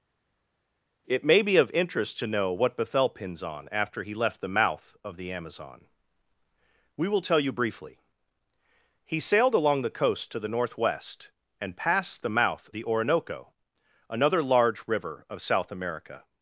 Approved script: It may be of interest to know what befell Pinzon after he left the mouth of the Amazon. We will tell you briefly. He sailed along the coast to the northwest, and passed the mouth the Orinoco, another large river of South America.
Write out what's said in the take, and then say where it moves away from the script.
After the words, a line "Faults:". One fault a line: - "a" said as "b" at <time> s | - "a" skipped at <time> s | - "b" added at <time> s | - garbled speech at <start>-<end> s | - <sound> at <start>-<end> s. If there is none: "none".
It may be of interest to know what befell Pinzon after he left the mouth of the Amazon. We will tell you briefly. He sailed along the coast to the northwest, and passed the mouth the Orinoco, another large river of South America.
Faults:
none